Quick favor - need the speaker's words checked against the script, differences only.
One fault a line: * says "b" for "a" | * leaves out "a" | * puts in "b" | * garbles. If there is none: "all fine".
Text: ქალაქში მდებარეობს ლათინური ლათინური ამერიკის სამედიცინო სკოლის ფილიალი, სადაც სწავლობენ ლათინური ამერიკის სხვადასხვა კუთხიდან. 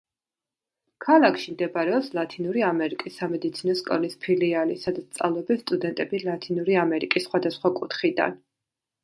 * leaves out "ლათინური"
* puts in "სტუდენტები"